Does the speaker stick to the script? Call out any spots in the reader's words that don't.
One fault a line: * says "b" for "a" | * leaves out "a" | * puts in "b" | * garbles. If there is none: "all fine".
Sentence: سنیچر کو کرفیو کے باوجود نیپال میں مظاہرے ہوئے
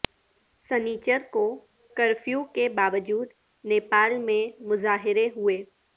all fine